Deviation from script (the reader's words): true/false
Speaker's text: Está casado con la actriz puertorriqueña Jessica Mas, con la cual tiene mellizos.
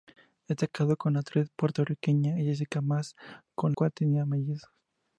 true